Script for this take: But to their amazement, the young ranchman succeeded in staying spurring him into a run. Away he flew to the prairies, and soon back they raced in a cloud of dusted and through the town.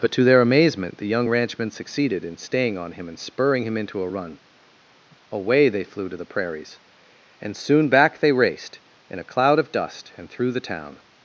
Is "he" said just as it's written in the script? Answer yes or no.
no